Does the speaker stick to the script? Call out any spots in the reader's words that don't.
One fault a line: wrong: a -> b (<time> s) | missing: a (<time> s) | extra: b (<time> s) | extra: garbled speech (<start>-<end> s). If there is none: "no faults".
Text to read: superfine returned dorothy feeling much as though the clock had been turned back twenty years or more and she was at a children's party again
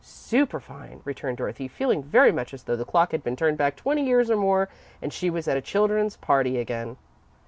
extra: very (2.0 s)